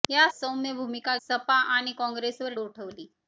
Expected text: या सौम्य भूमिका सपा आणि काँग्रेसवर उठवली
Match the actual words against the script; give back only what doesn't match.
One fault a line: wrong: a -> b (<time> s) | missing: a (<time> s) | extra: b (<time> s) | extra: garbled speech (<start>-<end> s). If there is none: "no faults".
no faults